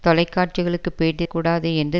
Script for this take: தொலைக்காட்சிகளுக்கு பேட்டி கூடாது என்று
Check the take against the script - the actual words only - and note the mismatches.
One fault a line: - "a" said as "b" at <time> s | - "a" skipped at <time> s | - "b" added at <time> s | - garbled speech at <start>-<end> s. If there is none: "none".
none